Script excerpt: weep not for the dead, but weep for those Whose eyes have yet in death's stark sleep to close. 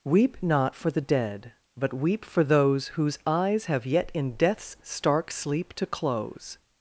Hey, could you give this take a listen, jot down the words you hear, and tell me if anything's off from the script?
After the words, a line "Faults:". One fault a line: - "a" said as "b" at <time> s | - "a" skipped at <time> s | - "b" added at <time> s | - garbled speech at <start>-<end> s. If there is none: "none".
weep not for the dead, but weep for those Whose eyes have yet in death's stark sleep to close.
Faults:
none